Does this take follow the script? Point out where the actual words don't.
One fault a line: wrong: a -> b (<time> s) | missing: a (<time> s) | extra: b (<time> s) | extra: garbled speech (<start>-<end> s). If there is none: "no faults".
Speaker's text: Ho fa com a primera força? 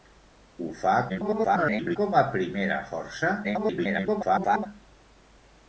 extra: garbled speech (1.1-2.0 s)
extra: garbled speech (3.4-4.7 s)